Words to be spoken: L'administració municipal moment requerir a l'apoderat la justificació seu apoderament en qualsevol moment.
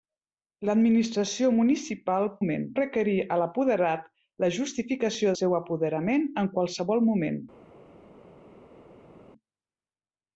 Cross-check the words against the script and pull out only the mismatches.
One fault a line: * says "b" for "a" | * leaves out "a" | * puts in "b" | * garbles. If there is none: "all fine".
all fine